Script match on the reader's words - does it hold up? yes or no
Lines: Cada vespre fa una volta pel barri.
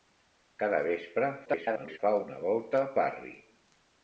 no